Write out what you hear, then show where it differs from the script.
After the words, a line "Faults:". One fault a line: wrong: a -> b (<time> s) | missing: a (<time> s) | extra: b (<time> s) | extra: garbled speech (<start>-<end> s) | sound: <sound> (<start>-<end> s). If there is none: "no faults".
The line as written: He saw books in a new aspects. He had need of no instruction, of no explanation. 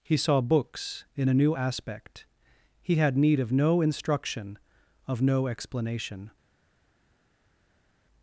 He saw books in a new aspect. He had need of no instruction, of no explanation.
Faults:
wrong: aspects -> aspect (1.5 s)